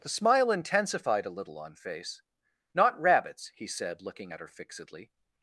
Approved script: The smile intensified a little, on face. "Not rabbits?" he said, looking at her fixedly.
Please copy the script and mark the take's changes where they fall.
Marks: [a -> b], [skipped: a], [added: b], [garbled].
The smile intensified a little, on face. "Not rabbits?" he said, looking at her fixedly.